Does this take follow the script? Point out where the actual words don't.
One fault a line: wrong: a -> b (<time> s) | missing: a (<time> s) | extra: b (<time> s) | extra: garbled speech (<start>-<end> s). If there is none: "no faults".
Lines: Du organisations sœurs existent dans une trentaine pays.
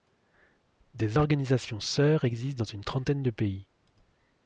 wrong: Du -> Des (0.9 s)
extra: de (3.2 s)